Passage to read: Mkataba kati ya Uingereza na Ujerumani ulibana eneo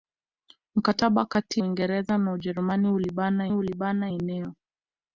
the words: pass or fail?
fail